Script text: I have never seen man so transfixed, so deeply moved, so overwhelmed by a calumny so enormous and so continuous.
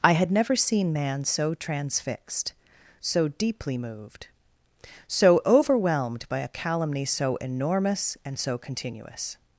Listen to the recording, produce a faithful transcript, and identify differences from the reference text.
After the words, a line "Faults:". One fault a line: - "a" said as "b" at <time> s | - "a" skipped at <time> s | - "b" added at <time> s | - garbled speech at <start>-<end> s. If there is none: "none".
I had never seen man so transfixed, so deeply moved, so overwhelmed by a calumny so enormous and so continuous.
Faults:
- "have" said as "had" at 0.1 s